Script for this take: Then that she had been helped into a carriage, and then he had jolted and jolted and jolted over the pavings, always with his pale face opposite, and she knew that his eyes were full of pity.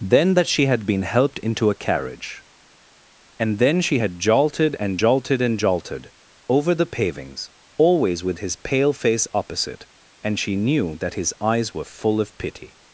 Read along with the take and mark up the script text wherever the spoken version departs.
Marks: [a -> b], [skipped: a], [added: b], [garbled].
Then that she had been helped into a carriage, and then [he -> she] had jolted and jolted and jolted over the pavings, always with his pale face opposite, and she knew that his eyes were full of pity.